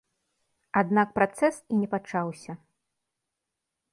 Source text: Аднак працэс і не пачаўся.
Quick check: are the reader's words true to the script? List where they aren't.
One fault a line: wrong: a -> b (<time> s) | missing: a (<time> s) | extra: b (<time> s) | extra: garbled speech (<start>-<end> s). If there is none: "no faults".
no faults